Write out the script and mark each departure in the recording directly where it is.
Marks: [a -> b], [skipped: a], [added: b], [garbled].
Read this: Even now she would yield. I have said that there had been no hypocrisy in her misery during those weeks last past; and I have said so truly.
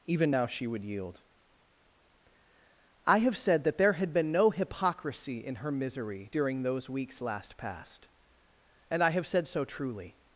Even now she would yield. I have said that there had been no hypocrisy in her misery during those weeks last past; and I have said so truly.